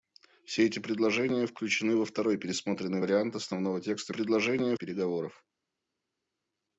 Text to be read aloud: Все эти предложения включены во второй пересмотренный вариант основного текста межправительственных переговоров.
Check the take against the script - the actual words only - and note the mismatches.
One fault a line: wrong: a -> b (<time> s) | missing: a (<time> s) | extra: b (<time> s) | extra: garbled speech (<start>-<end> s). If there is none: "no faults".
wrong: межправительственных -> предложения (4.1 s)